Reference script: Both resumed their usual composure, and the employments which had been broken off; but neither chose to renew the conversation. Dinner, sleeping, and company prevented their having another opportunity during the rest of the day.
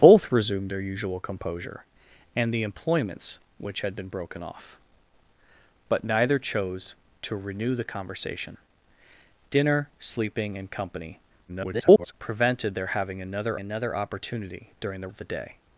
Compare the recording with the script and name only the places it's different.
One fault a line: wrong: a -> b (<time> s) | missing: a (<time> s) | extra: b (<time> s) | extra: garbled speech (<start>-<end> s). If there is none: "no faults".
extra: garbled speech (11.5-12.1 s)
extra: another (13.6 s)
missing: rest (15.1 s)